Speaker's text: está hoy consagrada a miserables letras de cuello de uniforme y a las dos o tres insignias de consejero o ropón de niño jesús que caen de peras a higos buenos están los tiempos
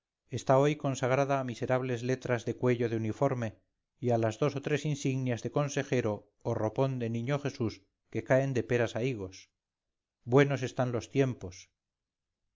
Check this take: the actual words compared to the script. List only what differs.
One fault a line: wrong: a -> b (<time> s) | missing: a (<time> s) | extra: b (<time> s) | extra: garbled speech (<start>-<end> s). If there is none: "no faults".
no faults